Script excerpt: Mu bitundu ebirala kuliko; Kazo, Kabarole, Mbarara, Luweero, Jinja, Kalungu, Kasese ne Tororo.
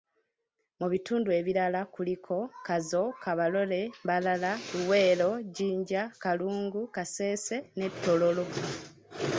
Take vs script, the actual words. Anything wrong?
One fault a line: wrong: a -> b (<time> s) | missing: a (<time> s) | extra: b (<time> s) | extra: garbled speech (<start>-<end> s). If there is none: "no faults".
no faults